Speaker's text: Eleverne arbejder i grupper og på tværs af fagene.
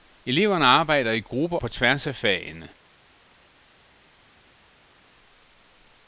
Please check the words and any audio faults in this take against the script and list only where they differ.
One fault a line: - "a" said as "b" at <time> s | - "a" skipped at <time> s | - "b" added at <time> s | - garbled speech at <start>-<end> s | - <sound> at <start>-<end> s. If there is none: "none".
- "og" skipped at 1.6 s